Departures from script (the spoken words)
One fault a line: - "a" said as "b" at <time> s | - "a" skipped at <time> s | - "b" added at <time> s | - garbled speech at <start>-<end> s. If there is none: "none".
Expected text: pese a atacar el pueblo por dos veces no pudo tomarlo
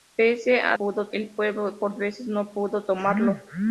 - "atacar" said as "pudo" at 0.8 s
- "dos" skipped at 1.9 s